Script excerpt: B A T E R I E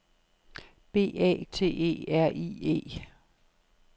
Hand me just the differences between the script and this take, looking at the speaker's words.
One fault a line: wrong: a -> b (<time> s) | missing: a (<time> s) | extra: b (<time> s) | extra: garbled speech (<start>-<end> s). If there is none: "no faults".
no faults